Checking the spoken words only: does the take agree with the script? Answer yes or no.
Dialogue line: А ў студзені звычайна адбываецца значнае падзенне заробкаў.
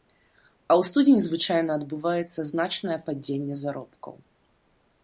yes